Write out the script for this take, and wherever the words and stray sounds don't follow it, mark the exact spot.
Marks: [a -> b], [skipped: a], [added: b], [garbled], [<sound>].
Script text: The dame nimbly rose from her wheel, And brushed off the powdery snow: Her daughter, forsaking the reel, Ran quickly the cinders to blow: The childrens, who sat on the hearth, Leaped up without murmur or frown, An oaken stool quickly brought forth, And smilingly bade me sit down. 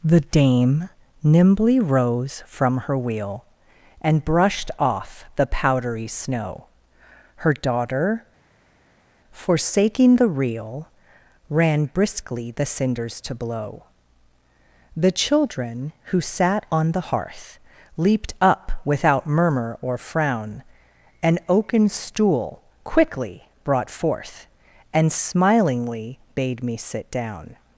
The dame nimbly rose from her wheel, And brushed off the powdery snow: Her daughter, forsaking the reel, Ran [quickly -> briskly] the cinders to blow: The [childrens, -> children] who sat on the hearth, Leaped up without murmur or frown, An oaken stool quickly brought forth, And smilingly bade me sit down.